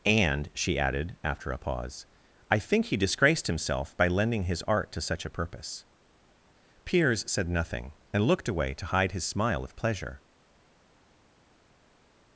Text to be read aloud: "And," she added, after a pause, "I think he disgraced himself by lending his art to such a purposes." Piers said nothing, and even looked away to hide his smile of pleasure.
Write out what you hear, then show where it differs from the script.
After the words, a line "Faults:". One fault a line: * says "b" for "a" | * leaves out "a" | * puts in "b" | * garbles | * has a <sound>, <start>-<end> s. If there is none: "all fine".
"And," she added, after a pause, "I think he disgraced himself by lending his art to such a purpose." Piers said nothing, and looked away to hide his smile of pleasure.
Faults:
* says "purpose" for "purposes"
* leaves out "even"